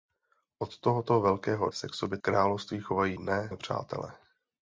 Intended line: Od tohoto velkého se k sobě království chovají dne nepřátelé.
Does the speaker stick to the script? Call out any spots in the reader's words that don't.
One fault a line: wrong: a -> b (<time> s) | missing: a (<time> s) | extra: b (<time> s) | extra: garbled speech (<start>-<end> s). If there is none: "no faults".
no faults